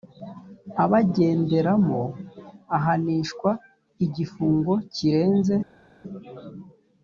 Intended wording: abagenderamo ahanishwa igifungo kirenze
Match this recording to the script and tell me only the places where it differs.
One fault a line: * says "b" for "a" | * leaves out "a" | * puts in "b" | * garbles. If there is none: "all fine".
all fine